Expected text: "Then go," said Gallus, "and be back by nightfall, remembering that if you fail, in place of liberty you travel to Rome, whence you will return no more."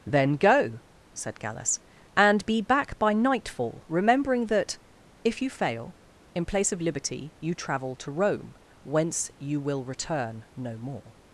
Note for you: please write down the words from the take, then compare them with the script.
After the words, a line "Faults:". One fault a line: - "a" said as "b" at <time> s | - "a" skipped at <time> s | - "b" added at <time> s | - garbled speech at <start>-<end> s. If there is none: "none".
"Then go," said Gallus, "and be back by nightfall, remembering that if you fail, in place of liberty you travel to Rome, whence you will return no more."
Faults:
none